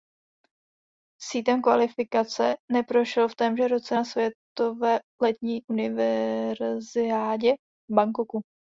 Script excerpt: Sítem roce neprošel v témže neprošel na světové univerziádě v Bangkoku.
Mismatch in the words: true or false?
true